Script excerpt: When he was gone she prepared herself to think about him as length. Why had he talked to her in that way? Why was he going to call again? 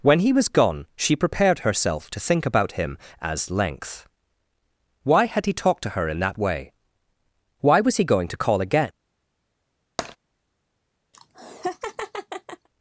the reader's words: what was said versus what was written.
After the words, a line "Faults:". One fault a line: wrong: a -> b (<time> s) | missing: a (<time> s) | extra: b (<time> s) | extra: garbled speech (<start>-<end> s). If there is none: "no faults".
When he was gone she prepared herself to think about him as length. Why had he talked to her in that way? Why was he going to call again?
Faults:
no faults